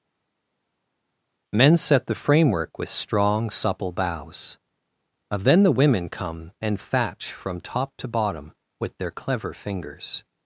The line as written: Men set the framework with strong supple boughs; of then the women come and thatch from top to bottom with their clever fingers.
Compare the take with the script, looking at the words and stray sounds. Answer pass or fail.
pass